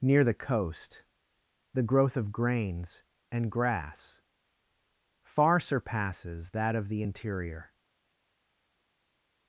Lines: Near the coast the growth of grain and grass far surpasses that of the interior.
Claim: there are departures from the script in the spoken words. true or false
true